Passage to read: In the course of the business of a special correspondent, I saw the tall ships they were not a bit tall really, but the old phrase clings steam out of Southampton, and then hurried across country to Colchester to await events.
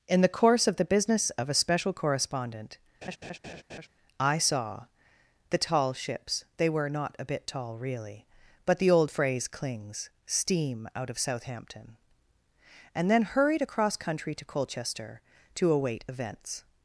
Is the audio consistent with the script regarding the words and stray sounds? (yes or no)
no